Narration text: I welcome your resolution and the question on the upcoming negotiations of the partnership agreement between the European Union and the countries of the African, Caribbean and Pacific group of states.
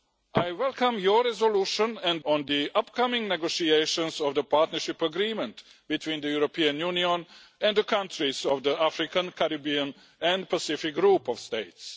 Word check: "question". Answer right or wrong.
wrong